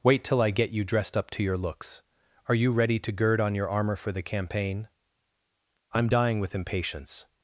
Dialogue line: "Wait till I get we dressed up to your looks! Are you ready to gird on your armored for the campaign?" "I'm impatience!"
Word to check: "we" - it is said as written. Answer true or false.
false